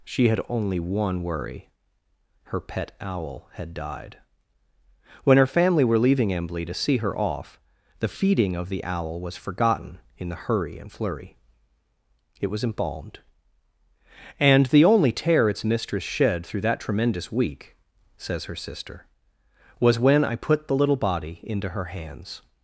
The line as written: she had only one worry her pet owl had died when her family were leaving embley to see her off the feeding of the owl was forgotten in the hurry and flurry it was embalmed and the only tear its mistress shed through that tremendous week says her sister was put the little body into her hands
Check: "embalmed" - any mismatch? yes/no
no